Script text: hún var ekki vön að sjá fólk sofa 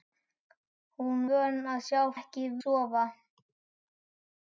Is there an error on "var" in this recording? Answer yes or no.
yes